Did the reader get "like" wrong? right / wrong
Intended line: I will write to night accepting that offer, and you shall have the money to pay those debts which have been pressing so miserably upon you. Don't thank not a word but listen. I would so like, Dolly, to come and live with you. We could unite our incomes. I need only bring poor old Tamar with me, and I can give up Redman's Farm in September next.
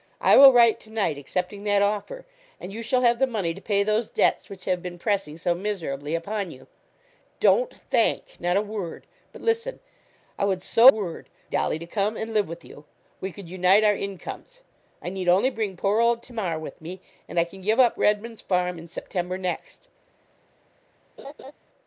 wrong